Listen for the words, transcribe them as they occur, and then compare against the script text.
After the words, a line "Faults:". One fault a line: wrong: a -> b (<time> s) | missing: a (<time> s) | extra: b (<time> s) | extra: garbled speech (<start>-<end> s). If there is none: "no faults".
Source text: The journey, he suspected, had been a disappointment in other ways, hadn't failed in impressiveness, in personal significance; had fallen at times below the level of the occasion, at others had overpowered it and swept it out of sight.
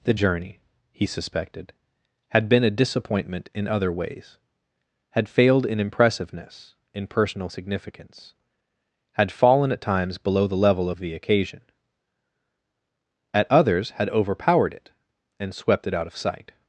The journey, he suspected, had been a disappointment in other ways, had failed in impressiveness, in personal significance; had fallen at times below the level of the occasion, at others had overpowered it and swept it out of sight.
Faults:
wrong: hadn't -> had (5.1 s)